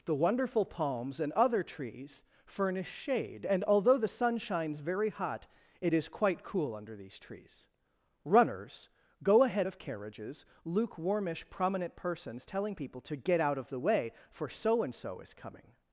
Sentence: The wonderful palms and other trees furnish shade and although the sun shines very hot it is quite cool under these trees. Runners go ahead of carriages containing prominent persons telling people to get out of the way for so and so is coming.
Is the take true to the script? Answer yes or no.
no